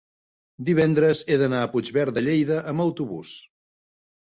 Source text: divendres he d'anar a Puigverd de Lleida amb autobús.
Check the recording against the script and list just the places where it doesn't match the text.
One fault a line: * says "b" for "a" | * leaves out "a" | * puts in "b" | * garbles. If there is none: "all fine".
all fine